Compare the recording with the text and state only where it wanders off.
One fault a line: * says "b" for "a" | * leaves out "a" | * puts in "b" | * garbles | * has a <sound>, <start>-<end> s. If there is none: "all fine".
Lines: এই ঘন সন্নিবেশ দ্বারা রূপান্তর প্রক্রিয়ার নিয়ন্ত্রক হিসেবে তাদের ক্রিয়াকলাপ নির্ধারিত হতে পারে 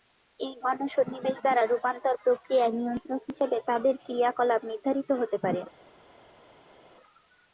all fine